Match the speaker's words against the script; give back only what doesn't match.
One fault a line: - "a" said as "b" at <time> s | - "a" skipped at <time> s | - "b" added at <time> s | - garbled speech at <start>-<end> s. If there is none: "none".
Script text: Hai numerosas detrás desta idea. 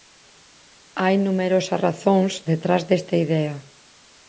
- "razóns" added at 1.9 s